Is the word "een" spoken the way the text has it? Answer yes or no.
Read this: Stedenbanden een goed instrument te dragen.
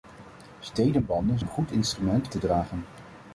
yes